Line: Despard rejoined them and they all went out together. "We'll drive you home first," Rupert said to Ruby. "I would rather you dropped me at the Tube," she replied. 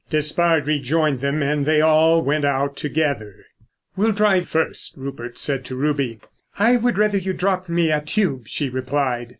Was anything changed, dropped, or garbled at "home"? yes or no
yes